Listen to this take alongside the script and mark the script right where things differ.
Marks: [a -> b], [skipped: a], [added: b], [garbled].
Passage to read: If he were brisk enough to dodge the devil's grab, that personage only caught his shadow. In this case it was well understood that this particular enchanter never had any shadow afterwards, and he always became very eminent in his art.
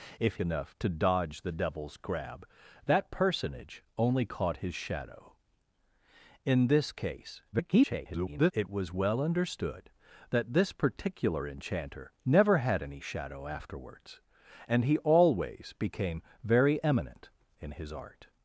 If [skipped: he were brisk] enough to dodge the devil's grab, that personage only caught his shadow. In this case [garbled] it was well understood that this particular enchanter never had any shadow afterwards, and he always became very eminent in his art.